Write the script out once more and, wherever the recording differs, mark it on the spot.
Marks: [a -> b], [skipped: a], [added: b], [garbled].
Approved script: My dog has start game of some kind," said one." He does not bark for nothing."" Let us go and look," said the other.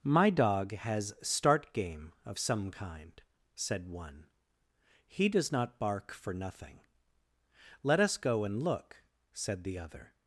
My dog has start game of some kind," said one." He does not bark for nothing."" Let us go and look," said the other.